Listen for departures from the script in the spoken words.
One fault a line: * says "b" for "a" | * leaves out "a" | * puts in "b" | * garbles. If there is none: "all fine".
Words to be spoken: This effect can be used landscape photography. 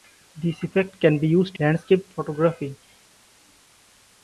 all fine